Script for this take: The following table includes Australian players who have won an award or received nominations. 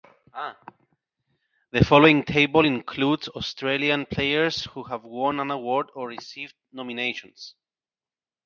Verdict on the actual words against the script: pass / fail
pass